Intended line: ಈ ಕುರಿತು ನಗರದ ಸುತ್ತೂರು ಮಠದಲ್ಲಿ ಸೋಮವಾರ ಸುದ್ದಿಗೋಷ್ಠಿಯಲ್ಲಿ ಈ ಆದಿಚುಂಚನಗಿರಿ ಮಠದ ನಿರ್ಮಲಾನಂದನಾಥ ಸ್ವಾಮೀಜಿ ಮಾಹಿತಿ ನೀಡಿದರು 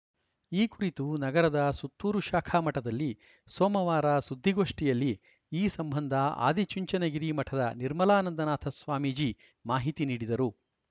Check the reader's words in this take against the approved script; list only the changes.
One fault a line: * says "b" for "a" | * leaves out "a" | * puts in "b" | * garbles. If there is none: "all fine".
* puts in "ಶಾಖಾ"
* puts in "ಸಂಬಂಧ"